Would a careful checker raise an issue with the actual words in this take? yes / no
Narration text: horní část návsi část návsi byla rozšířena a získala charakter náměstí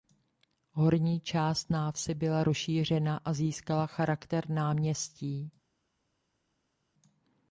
yes